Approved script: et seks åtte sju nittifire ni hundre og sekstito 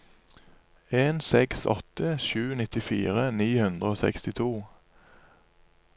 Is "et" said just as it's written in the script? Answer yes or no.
no